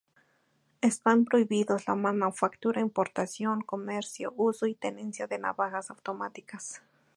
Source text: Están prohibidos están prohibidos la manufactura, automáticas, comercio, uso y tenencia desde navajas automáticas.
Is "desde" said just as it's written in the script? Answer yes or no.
no